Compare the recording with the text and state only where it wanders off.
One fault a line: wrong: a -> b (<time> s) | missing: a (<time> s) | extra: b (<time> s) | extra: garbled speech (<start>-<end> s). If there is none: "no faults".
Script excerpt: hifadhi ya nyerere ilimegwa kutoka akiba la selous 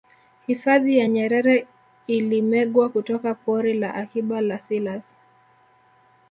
extra: pori la (3.3 s)